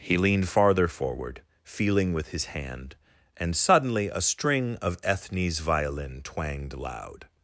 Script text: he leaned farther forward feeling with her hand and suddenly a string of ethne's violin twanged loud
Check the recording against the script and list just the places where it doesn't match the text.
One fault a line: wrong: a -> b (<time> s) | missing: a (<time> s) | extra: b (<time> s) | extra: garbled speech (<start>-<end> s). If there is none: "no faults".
wrong: her -> his (2.3 s)